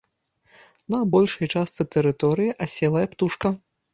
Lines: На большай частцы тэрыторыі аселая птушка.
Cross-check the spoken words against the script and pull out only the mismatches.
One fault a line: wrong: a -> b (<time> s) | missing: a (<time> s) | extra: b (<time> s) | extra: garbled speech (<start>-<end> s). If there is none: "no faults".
no faults